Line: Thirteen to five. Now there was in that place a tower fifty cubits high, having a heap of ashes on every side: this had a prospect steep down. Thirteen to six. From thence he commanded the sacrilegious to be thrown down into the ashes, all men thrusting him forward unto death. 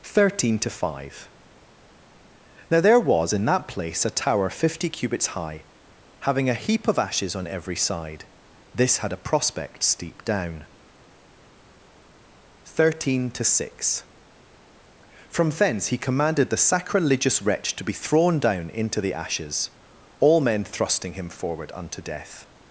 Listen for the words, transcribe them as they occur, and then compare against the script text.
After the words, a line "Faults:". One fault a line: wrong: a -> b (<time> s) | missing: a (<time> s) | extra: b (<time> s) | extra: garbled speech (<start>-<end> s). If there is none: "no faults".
Thirteen to five. Now there was in that place a tower fifty cubits high, having a heap of ashes on every side: this had a prospect steep down. Thirteen to six. From thence he commanded the sacrilegious wretch to be thrown down into the ashes, all men thrusting him forward unto death.
Faults:
extra: wretch (17.4 s)